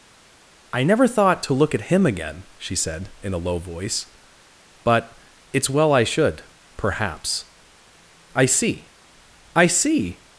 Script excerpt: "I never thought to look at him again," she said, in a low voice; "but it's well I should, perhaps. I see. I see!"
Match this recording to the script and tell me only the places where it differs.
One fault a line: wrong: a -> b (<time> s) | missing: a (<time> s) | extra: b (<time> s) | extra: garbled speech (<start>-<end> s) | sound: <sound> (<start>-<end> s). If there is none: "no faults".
no faults